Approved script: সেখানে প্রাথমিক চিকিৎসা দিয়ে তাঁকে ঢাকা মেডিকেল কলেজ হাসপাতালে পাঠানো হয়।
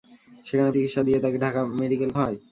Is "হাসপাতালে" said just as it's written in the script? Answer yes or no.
no